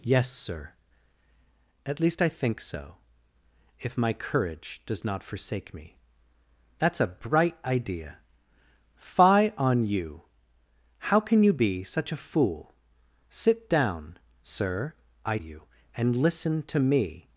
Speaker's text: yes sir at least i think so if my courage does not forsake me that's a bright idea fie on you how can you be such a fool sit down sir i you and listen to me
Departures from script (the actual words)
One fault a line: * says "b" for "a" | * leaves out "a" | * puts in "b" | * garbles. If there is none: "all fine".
all fine